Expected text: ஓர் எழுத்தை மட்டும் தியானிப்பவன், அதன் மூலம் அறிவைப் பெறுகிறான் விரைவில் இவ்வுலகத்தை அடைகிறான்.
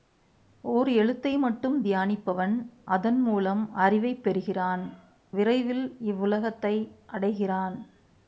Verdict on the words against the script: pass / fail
pass